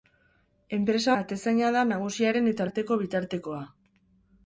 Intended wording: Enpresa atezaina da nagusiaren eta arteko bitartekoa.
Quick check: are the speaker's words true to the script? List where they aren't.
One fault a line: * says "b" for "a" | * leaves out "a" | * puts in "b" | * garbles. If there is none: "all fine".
all fine